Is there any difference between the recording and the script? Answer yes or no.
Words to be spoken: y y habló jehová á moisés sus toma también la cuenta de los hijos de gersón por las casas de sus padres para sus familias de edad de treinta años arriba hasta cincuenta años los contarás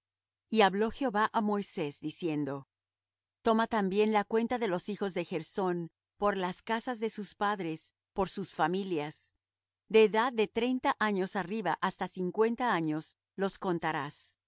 yes